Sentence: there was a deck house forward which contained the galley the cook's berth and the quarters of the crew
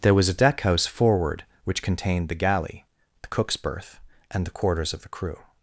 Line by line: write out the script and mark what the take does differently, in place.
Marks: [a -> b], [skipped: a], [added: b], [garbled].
there was a deck house forward which contained the galley the cook's berth and the quarters of the crew